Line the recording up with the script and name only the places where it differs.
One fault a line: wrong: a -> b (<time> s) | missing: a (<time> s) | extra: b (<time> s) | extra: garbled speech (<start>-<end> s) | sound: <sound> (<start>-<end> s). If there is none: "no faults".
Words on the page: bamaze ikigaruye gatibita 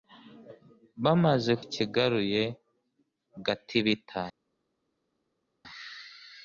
no faults